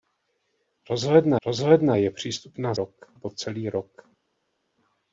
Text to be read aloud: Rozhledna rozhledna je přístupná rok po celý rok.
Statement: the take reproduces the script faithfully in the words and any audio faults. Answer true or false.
true